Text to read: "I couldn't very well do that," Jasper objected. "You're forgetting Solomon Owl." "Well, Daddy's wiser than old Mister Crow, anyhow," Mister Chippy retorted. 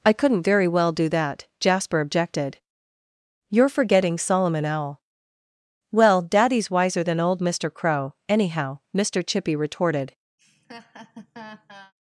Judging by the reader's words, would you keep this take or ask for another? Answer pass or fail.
pass